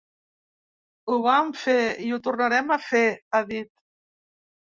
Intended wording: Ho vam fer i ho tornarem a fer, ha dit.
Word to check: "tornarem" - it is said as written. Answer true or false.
true